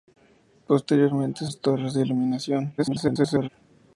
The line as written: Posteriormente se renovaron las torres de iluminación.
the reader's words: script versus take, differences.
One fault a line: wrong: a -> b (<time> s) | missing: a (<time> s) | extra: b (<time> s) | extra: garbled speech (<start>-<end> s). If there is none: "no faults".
missing: se renovaron (1.4 s)
extra: garbled speech (2.8-3.5 s)